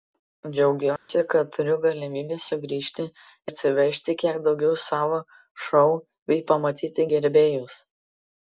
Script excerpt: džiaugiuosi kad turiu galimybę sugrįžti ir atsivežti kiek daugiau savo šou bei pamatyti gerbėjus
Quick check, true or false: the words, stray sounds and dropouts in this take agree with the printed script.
false